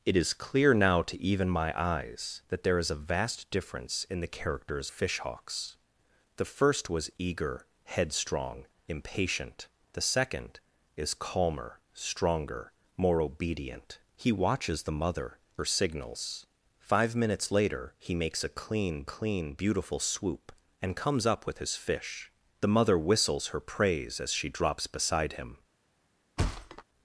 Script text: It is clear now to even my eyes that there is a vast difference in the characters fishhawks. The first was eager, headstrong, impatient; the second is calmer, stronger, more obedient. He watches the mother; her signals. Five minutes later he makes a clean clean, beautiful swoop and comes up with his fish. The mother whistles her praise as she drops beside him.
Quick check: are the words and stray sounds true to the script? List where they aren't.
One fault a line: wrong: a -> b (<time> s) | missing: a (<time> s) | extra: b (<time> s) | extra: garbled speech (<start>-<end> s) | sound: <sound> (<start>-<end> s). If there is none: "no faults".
sound: thud (26.4-26.8 s)